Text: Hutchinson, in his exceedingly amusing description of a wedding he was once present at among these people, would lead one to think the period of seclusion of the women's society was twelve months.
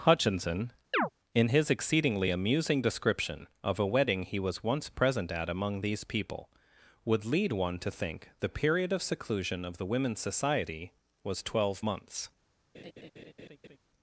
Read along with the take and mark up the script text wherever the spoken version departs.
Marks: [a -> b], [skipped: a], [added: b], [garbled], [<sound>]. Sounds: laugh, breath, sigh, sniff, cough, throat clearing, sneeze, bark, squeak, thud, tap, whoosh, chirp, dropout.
Hutchinson, [chirp] in his exceedingly amusing description of a wedding he was once present at among these people, would lead one to think the period of seclusion of the women's society was twelve months. [laugh]